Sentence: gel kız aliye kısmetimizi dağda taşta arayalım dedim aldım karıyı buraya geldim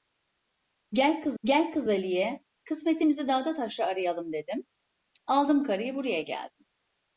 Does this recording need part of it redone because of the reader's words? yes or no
yes